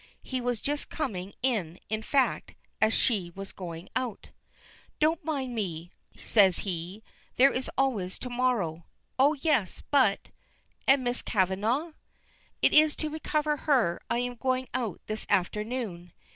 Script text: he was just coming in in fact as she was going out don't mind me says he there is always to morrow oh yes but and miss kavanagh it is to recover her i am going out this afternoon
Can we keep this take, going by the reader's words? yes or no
yes